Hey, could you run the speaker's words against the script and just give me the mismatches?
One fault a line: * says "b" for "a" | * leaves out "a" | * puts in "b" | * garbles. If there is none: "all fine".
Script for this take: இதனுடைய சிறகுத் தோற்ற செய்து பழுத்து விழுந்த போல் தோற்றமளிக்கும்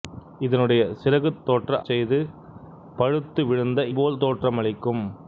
all fine